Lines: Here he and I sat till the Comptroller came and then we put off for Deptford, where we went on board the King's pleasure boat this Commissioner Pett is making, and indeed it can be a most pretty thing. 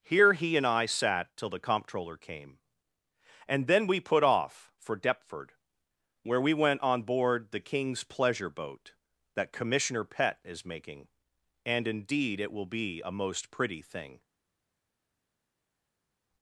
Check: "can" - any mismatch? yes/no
yes